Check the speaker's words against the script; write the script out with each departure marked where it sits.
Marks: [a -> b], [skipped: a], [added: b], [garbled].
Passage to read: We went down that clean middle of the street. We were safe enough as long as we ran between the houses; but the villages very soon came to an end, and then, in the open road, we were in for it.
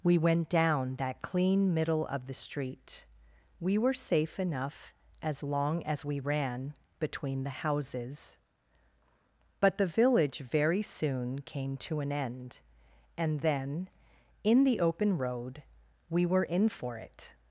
We went down that clean middle of the street. We were safe enough as long as we ran between the houses; but the [villages -> village] very soon came to an end, and then, in the open road, we were in for it.